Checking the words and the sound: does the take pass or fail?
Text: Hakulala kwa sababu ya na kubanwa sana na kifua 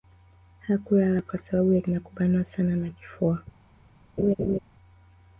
fail